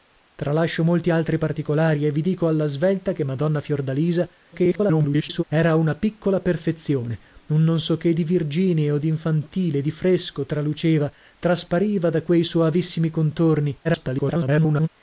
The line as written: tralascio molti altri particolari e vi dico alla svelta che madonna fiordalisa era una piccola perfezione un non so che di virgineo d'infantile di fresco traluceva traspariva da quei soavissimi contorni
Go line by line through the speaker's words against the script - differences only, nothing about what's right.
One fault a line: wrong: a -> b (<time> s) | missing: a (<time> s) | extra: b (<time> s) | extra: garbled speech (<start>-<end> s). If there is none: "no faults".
extra: garbled speech (4.5-5.4 s)
extra: garbled speech (13.8-14.9 s)